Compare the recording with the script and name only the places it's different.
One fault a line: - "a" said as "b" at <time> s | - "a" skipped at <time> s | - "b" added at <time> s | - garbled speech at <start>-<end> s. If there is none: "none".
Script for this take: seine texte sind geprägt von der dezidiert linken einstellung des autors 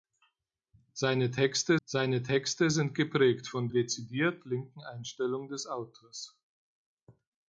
- "seine texte" added at 1.8 s
- "der" skipped at 3.7 s